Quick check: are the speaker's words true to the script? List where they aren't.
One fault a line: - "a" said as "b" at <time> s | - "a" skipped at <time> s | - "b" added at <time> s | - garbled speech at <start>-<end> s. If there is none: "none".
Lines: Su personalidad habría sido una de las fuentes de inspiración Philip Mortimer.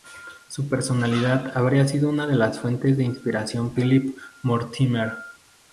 none